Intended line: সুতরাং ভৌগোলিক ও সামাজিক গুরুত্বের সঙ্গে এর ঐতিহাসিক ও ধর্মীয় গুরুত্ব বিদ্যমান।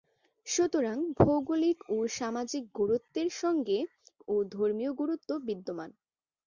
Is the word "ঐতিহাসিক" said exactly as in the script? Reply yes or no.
no